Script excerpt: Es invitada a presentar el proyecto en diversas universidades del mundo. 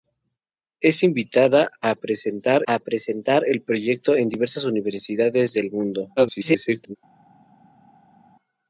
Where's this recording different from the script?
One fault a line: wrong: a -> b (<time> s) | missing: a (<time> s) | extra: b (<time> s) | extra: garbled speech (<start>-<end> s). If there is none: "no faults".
extra: a presentar (2.6 s)
extra: garbled speech (6.2-7.0 s)